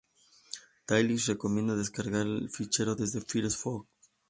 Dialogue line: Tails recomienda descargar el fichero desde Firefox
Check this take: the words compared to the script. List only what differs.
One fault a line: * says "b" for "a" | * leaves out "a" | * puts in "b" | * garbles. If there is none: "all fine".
all fine